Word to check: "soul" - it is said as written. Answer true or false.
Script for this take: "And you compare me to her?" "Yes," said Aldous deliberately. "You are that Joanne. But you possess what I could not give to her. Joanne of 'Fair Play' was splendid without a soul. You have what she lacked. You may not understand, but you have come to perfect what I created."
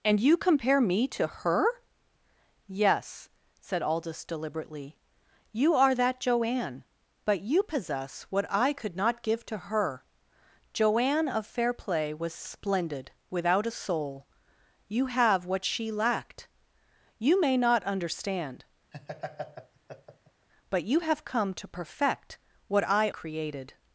true